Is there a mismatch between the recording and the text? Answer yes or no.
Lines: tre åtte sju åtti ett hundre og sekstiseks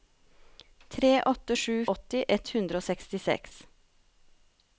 no